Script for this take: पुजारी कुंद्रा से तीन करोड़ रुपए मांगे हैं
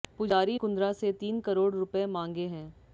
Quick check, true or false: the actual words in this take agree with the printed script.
true